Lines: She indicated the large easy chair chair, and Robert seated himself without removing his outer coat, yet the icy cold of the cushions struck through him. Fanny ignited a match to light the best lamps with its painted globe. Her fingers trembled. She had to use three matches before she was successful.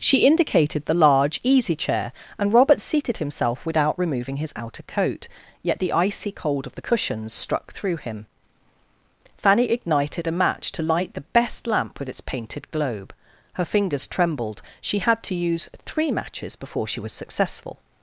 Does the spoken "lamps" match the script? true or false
false